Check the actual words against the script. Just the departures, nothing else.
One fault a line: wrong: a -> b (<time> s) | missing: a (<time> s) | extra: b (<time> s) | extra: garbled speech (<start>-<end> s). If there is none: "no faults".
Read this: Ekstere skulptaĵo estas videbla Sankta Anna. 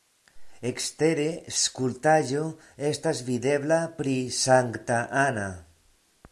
extra: pri (4.0 s)